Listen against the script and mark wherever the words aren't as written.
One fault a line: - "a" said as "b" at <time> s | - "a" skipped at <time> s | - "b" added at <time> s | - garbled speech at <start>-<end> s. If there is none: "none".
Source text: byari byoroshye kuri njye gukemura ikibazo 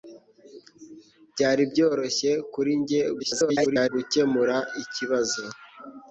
- garbled speech at 3.2-3.9 s